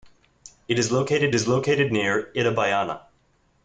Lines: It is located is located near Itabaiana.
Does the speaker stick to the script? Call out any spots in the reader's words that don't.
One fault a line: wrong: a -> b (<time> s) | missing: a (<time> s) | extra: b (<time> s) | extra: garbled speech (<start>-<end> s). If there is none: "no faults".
no faults